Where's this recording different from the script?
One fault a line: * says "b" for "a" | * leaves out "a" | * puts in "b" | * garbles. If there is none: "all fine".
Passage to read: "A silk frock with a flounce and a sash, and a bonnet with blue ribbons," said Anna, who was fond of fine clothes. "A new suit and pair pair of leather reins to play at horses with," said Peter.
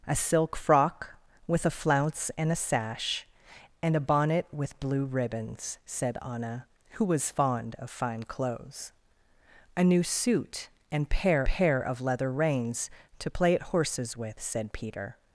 all fine